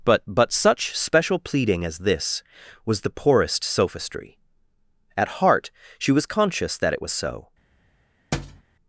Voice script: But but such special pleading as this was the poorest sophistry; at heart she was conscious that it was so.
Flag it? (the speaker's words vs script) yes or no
no